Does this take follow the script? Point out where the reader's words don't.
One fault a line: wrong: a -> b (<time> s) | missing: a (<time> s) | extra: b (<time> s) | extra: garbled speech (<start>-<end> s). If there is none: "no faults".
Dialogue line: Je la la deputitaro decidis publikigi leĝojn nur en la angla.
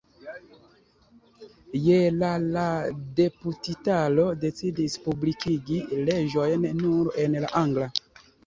no faults